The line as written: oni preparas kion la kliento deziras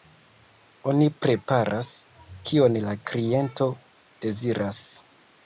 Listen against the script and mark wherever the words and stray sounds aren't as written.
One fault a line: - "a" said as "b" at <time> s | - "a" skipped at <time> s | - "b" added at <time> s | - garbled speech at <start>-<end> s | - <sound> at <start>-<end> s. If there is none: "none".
none